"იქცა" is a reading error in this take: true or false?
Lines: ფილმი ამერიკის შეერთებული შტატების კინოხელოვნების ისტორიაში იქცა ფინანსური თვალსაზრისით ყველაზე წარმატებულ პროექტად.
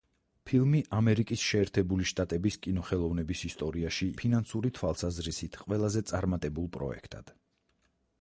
true